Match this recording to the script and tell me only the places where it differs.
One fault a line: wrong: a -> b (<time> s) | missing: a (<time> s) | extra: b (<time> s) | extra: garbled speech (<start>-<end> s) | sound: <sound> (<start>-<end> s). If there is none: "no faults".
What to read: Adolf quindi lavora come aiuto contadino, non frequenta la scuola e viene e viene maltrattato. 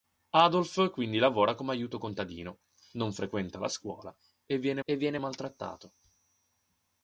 no faults